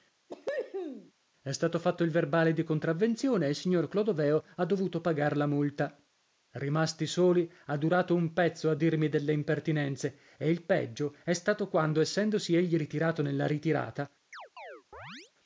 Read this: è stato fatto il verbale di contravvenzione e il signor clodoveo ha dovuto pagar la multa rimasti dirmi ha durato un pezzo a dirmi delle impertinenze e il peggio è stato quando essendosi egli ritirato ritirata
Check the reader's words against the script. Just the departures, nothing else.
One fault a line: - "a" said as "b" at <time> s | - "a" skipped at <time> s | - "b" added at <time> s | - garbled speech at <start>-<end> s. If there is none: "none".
- "dirmi" said as "soli" at 7.1 s
- "nella" added at 13.2 s